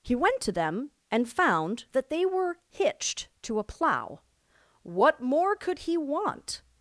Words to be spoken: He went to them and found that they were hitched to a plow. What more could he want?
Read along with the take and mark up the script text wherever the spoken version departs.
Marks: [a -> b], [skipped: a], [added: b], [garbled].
He went to them and found that they were hitched to a plow. What more could he want?